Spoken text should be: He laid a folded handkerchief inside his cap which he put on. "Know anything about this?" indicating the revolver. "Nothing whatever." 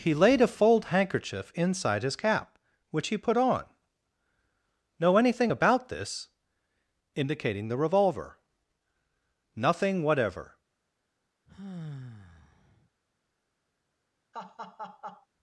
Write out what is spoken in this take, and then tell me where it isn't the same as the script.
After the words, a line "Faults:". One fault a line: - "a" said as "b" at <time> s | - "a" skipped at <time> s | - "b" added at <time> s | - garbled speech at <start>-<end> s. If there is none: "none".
He laid a fold handkerchief inside his cap which he put on. "Know anything about this?" indicating the revolver. "Nothing whatever."
Faults:
- "folded" said as "fold" at 0.5 s